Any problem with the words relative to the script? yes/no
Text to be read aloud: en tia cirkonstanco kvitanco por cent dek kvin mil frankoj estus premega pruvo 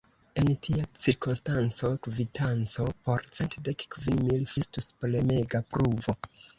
yes